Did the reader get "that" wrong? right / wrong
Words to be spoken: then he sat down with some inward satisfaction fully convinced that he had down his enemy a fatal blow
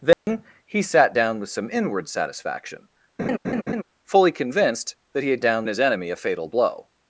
right